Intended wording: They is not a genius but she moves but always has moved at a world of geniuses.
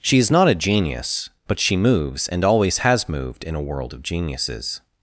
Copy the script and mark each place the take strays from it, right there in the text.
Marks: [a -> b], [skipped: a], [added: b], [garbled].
[They -> She] is not a genius but she moves [but -> and] always has moved [at -> in] a world of geniuses.